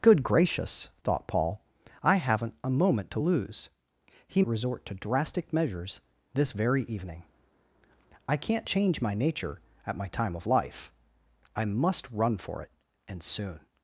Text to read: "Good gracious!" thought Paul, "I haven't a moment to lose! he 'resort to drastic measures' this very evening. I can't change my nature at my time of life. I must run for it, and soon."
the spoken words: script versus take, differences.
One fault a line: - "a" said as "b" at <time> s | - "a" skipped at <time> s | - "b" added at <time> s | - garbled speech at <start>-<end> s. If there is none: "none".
none